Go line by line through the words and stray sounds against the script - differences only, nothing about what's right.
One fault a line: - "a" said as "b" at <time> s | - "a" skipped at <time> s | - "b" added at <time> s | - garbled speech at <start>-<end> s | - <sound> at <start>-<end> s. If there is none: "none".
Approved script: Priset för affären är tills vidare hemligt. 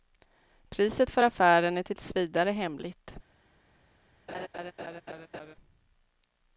- laugh at 4.3-5.6 s